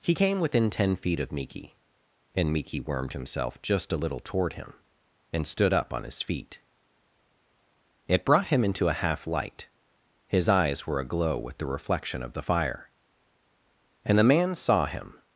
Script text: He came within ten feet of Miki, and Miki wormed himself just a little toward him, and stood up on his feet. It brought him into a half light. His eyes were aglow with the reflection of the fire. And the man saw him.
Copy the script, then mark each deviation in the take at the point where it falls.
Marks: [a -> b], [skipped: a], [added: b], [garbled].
He came within ten feet of Miki, and Miki wormed himself just a little toward him, and stood up on his feet. It brought him into a half light. His eyes were aglow with the reflection of the fire. And the man saw him.